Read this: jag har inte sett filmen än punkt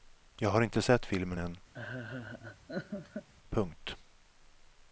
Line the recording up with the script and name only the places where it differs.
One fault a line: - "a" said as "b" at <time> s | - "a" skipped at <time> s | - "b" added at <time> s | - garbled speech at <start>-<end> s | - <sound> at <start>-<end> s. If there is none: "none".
- laugh at 1.7-3.3 s